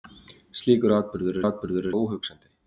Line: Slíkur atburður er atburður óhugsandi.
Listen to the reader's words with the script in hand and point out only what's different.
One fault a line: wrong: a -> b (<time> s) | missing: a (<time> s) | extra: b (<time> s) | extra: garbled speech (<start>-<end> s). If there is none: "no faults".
no faults